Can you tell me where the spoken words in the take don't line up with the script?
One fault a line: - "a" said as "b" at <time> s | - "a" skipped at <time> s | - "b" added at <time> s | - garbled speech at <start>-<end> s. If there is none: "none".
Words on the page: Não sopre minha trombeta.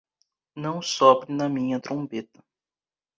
- "na" added at 1.3 s